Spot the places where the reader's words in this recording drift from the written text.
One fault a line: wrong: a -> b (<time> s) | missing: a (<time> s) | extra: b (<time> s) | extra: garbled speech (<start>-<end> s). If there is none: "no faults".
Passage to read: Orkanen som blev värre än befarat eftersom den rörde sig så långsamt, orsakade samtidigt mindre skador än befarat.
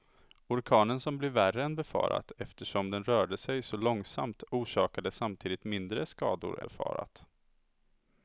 missing: än (6.6 s)